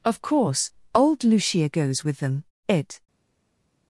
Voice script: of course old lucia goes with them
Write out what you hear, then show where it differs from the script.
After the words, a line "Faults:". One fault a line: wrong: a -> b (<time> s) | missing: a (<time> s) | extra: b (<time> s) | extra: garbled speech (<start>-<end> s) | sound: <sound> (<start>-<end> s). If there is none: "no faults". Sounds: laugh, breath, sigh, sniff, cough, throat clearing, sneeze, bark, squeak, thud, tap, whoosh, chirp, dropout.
of course old lucia goes with them it
Faults:
extra: it (2.7 s)